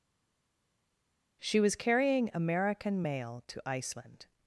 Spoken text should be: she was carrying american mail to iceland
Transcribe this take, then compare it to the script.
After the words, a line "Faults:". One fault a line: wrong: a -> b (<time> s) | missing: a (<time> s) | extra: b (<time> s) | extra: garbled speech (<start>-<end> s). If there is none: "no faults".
she was carrying american mail to iceland
Faults:
no faults